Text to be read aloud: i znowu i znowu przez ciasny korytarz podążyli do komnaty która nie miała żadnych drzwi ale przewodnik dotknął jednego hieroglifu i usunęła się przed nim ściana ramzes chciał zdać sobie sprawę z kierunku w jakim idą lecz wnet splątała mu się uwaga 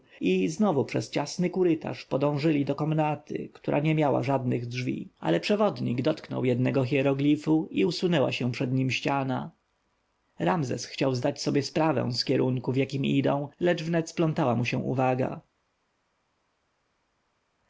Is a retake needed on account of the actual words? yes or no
yes